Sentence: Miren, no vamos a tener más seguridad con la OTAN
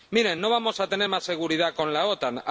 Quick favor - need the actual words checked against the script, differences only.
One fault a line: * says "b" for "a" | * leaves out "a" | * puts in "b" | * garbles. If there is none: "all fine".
all fine